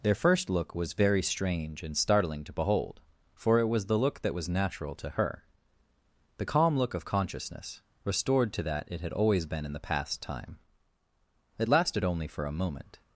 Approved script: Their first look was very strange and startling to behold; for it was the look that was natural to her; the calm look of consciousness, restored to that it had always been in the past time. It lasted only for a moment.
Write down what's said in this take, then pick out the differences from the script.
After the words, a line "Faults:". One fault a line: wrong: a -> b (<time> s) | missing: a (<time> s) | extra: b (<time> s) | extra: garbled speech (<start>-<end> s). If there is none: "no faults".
Their first look was very strange and startling to behold; for it was the look that was natural to her; the calm look of consciousness, restored to that it had always been in the past time. It lasted only for a moment.
Faults:
no faults